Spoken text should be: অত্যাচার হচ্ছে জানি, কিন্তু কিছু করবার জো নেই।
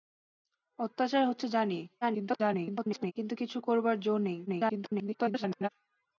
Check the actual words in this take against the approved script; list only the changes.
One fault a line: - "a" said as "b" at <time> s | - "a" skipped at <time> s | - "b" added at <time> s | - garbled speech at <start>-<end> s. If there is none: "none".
- garbled speech at 2.0-3.1 s
- garbled speech at 4.5-5.7 s